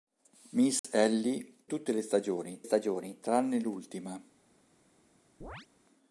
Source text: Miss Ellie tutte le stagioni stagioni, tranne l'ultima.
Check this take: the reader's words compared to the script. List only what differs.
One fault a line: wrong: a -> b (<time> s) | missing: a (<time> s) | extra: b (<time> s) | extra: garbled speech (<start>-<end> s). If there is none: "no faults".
no faults